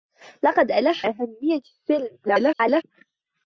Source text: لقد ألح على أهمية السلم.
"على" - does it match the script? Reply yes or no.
no